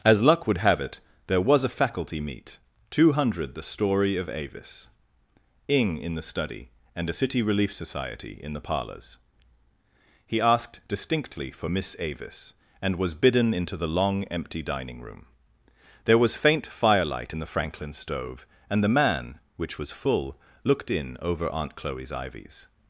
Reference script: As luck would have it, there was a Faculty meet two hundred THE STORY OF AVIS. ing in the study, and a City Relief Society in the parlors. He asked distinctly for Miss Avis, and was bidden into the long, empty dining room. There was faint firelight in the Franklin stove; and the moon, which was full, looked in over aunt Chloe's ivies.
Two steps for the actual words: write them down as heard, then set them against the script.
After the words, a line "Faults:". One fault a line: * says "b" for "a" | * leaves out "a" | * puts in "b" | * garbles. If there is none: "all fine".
As luck would have it, there was a Faculty meet two hundred THE STORY OF AVIS. ing in the study, and a City Relief Society in the parlors. He asked distinctly for Miss Avis, and was bidden into the long, empty dining room. There was faint firelight in the Franklin stove; and the man, which was full, looked in over aunt Chloe's ivies.
Faults:
* says "man" for "moon"